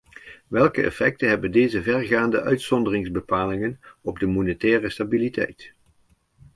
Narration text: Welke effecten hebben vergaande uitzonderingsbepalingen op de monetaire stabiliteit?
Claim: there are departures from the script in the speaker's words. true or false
true